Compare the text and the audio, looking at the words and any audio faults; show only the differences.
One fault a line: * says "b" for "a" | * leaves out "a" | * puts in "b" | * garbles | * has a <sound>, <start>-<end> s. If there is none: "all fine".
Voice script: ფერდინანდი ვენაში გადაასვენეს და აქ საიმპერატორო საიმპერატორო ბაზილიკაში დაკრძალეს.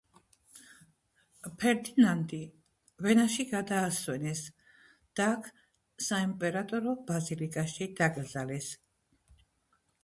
* leaves out "საიმპერატორო"